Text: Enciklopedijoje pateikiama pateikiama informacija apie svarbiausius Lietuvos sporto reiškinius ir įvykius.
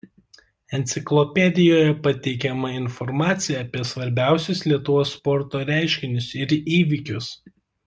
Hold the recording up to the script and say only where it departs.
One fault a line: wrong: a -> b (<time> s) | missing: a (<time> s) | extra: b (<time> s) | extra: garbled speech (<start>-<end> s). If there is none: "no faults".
missing: pateikiama (2.7 s)